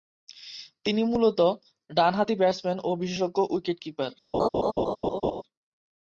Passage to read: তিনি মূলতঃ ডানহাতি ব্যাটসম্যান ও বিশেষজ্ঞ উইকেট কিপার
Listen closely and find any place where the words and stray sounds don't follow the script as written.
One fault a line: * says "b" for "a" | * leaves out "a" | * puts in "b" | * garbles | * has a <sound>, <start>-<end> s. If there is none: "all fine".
* has a laugh, 4.3-5.4 s